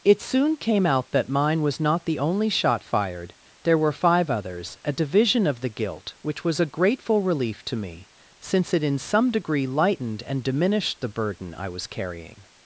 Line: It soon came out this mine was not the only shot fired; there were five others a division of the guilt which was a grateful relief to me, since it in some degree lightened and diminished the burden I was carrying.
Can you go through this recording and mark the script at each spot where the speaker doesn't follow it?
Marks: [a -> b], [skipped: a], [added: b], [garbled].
It soon came out [this -> that] mine was not the only shot fired; there were five others a division of the guilt which was a grateful relief to me, since it in some degree lightened and diminished the burden I was carrying.